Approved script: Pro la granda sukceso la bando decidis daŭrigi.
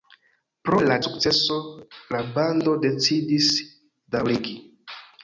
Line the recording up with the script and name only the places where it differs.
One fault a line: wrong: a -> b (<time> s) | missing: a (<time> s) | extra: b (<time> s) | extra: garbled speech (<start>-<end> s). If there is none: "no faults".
missing: granda (0.9 s)